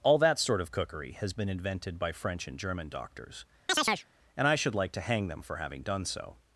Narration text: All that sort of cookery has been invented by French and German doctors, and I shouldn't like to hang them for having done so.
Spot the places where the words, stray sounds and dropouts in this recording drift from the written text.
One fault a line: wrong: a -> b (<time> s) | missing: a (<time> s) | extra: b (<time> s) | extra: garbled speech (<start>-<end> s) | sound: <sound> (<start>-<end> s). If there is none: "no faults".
sound: chirp (3.7-4.1 s)
wrong: shouldn't -> should (4.5 s)